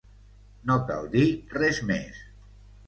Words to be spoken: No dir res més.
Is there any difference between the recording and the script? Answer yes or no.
yes